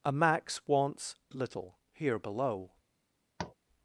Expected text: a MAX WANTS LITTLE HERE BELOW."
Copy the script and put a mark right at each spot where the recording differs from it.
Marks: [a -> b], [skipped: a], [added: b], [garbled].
a MAX WANTS LITTLE HERE BELOW."